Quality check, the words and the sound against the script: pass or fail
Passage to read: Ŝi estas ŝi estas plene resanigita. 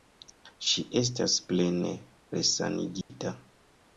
fail